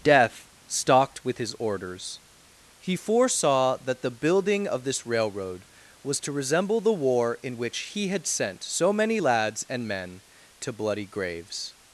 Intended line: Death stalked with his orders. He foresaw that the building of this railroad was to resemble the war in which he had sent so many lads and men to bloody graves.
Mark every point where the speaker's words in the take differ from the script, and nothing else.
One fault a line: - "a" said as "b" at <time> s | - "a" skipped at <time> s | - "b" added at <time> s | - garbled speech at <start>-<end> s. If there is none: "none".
none